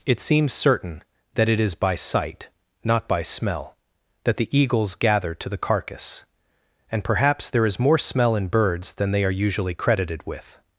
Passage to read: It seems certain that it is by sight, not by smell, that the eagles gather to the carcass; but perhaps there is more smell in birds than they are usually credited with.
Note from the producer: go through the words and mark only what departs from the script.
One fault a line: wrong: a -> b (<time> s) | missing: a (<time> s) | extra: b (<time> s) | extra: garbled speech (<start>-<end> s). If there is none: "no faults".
wrong: but -> and (6.9 s)